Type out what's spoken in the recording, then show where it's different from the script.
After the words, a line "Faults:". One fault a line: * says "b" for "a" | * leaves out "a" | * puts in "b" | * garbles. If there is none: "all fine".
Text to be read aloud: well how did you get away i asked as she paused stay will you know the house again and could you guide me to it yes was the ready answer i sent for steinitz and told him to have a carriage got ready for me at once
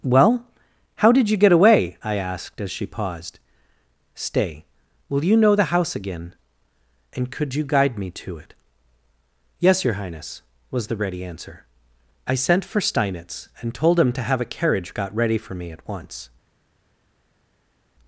well how did you get away i asked as she paused stay will you know the house again and could you guide me to it yes your highness was the ready answer i sent for steinitz and told him to have a carriage got ready for me at once
Faults:
* puts in "your highness"